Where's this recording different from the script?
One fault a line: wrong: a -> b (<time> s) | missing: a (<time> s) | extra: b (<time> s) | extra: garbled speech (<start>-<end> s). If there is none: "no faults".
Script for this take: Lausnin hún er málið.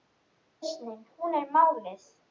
no faults